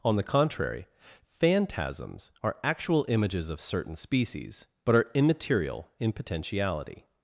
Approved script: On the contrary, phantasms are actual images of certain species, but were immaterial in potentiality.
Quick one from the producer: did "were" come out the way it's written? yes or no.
no